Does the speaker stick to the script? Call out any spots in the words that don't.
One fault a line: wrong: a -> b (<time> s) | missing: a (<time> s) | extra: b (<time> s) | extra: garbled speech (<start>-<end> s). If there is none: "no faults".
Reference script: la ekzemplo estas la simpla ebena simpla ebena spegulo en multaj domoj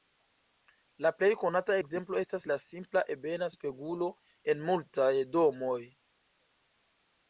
extra: plej konata (1.2 s)
missing: simpla ebena (3.5 s)